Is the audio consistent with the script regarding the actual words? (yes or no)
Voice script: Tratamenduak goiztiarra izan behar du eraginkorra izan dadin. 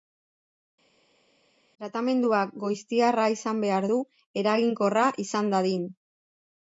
yes